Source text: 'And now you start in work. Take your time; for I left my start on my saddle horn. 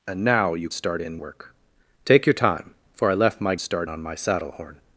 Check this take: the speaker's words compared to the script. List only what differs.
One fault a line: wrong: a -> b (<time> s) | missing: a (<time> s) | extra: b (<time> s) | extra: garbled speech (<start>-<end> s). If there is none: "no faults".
no faults